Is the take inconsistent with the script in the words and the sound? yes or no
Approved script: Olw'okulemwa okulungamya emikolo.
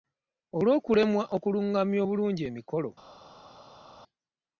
yes